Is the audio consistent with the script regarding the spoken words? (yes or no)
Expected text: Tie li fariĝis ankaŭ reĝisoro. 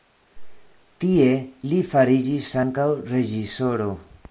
yes